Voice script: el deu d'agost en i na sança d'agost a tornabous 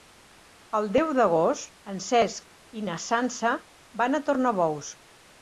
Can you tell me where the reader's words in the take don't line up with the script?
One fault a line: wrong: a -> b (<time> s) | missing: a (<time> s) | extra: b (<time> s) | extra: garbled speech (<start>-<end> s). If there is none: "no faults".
extra: cesc (2.0 s)
wrong: d'agost -> van (4.0 s)